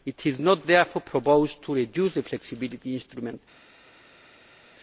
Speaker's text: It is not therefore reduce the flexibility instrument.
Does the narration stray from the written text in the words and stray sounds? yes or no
yes